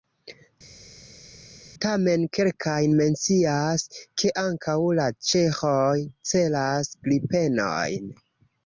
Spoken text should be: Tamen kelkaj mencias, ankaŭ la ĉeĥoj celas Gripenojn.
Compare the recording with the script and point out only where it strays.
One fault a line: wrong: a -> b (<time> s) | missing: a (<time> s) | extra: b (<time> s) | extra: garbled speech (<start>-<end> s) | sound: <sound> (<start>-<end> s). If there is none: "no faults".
extra: ke (4.2 s)